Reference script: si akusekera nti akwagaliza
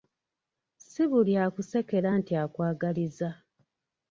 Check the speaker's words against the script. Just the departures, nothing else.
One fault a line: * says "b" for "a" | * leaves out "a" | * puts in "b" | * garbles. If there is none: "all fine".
* puts in "buli"